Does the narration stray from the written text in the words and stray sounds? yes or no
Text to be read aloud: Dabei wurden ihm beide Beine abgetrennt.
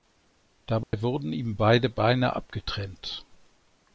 yes